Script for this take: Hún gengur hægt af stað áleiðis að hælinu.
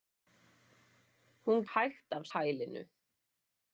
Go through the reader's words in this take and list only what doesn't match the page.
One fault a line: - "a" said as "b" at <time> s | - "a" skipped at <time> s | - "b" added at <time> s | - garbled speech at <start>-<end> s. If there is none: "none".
- "gengur" skipped at 1.6 s
- "stað áleiðis að" skipped at 2.2 s